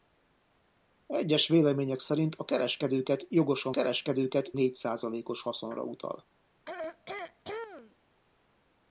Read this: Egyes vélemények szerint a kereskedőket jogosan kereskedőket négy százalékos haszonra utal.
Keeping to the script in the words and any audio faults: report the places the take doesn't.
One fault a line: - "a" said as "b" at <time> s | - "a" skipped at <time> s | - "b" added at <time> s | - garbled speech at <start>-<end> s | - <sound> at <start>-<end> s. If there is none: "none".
- throat clearing at 6.7-8.0 s